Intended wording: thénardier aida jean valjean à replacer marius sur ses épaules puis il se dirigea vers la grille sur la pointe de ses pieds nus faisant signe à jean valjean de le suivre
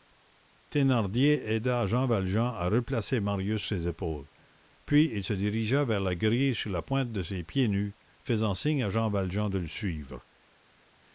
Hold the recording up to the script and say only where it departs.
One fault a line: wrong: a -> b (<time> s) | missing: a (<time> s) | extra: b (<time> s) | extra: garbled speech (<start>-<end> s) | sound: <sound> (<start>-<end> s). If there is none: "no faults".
missing: sur (3.6 s)